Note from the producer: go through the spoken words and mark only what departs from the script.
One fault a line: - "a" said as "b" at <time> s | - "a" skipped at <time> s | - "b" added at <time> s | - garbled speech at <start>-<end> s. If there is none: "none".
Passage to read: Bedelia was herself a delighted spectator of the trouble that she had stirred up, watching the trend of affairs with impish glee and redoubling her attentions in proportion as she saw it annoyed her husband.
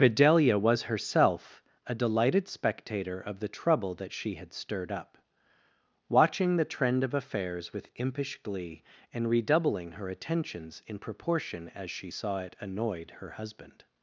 none